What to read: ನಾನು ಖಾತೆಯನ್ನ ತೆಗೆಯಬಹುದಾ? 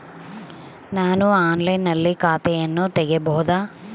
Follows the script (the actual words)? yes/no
no